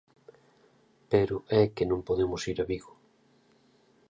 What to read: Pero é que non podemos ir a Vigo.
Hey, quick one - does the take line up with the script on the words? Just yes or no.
yes